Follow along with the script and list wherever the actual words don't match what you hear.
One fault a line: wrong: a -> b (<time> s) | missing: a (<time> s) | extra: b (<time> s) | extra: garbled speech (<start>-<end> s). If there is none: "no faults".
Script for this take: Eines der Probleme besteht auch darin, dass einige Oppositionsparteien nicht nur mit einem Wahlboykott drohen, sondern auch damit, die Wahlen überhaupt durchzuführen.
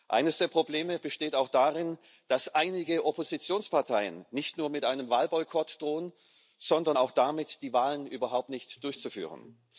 extra: nicht (8.5 s)